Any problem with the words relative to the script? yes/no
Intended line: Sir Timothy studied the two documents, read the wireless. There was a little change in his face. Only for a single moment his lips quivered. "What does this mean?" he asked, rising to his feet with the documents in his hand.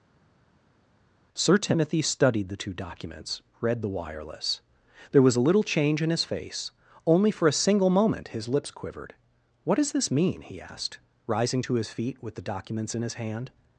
no